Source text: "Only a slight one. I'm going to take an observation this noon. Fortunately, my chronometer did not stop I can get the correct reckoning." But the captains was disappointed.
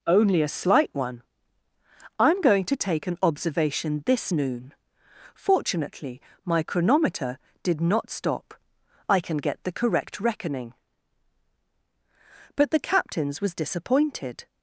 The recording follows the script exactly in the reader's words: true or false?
true